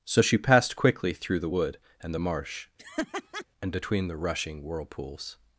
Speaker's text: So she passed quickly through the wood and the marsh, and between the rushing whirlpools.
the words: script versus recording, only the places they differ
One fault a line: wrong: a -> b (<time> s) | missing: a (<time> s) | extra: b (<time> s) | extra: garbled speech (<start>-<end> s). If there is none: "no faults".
no faults